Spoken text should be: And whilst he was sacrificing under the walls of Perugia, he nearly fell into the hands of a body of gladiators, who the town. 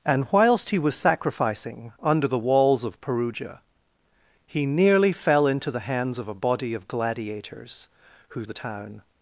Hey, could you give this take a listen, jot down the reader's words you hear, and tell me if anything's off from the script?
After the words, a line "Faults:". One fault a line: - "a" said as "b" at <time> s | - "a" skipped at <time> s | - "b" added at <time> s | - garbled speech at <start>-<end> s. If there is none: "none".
And whilst he was sacrificing under the walls of Perugia, he nearly fell into the hands of a body of gladiators, who the town.
Faults:
none